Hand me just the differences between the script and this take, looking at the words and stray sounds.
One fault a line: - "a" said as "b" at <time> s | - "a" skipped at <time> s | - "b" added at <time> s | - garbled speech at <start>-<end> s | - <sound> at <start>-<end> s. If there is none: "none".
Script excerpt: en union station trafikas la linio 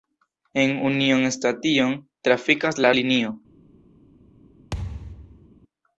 - thud at 4.7-5.5 s